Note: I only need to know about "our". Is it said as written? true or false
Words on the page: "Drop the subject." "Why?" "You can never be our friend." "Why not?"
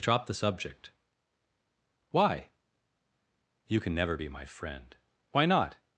false